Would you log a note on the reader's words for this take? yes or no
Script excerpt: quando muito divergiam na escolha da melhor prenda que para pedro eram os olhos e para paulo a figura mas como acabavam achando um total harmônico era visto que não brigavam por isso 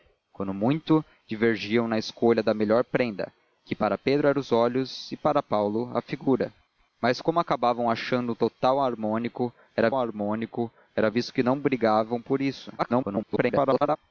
yes